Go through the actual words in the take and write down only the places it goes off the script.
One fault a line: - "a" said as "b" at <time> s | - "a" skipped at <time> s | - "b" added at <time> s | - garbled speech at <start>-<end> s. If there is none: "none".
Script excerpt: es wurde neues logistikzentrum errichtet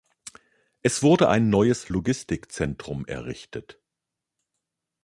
- "ein" added at 1.3 s